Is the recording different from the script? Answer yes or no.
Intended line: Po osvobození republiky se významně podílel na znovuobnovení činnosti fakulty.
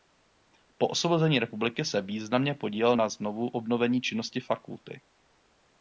no